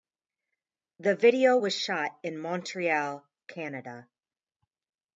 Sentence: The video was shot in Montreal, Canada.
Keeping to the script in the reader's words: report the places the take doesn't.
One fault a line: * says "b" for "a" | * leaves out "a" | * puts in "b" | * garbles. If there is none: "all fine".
all fine